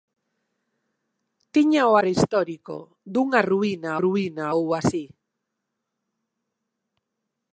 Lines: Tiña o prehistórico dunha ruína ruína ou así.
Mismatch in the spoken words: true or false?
false